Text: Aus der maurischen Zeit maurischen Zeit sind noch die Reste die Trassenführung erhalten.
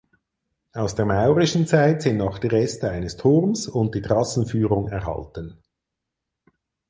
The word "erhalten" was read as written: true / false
true